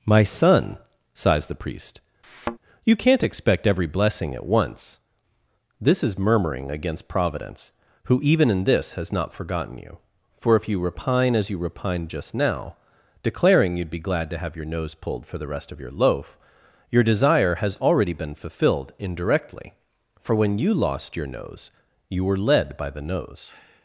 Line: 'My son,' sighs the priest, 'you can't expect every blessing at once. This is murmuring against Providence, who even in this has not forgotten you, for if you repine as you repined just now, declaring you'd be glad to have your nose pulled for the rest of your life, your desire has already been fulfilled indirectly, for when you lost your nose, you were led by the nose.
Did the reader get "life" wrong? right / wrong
wrong